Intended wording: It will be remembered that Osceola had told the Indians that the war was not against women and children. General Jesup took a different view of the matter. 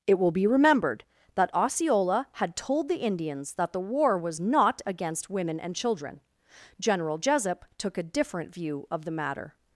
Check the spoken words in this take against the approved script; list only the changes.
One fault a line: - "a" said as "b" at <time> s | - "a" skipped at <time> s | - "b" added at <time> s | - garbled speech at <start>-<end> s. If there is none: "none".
none